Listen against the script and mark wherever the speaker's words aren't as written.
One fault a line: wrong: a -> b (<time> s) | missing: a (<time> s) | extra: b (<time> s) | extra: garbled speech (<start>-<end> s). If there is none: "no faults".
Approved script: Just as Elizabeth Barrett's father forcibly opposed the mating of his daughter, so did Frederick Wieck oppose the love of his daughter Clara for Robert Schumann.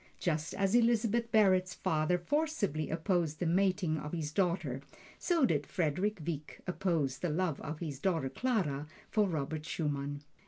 no faults